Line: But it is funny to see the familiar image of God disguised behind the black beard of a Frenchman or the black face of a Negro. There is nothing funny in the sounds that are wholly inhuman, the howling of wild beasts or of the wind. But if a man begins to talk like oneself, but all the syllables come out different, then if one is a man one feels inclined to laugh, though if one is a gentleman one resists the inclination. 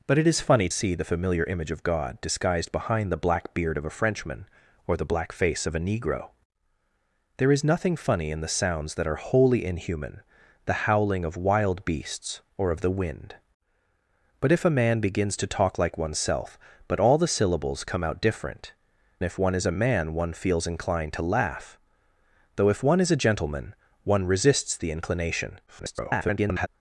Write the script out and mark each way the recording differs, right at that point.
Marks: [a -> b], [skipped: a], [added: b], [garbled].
But it is funny [skipped: to] see the familiar image of God disguised behind the black beard of a Frenchman or the black face of a Negro. There is nothing funny in the sounds that are wholly inhuman, the howling of wild beasts or of the wind. But if a man begins to talk like oneself, but all the syllables come out different, [skipped: then] if one is a man one feels inclined to laugh, though if one is a gentleman one resists the inclination. [garbled]